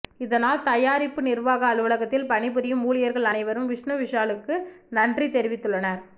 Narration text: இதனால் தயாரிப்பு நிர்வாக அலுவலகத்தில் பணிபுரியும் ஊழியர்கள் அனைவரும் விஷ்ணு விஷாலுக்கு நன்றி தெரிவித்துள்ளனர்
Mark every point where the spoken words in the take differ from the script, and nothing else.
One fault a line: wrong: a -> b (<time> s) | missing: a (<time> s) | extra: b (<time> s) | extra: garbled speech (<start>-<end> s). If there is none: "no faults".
no faults